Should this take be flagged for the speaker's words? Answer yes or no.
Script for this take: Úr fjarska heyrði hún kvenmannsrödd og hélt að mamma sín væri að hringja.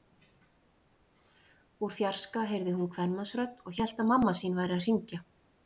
no